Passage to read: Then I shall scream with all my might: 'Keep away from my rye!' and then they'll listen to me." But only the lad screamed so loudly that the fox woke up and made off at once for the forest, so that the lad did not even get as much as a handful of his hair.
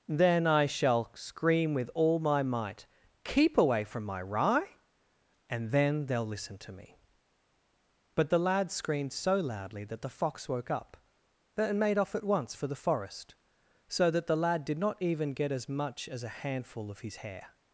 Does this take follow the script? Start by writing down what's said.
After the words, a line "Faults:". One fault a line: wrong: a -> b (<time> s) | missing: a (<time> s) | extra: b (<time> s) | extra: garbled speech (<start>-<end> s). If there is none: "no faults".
Then I shall scream with all my might: 'Keep away from my rye!' and then they'll listen to me." But the lad screamed so loudly that the fox woke up and made off at once for the forest, so that the lad did not even get as much as a handful of his hair.
Faults:
missing: only (8.3 s)